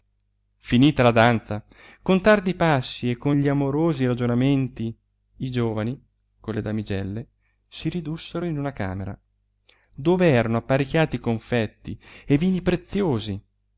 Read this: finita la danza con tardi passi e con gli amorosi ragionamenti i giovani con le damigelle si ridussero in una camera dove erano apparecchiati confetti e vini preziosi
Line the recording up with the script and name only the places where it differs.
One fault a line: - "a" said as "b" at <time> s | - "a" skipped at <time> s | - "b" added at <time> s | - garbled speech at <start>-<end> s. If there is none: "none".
none